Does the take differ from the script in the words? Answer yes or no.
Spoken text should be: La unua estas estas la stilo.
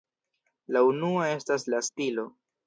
yes